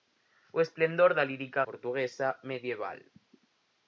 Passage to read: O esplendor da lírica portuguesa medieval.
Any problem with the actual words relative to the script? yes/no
no